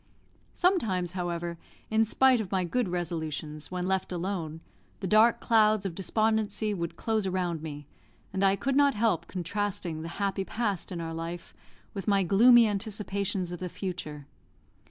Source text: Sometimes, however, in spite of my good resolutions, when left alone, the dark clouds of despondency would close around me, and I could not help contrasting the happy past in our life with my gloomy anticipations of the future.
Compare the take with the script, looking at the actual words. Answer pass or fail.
pass